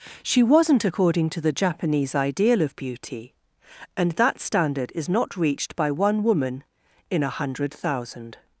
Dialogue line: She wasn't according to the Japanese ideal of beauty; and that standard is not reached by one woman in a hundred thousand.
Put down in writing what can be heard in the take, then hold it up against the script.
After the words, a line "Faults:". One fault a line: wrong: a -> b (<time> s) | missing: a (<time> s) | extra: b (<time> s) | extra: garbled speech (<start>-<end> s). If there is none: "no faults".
She wasn't according to the Japanese ideal of beauty; and that standard is not reached by one woman in a hundred thousand.
Faults:
no faults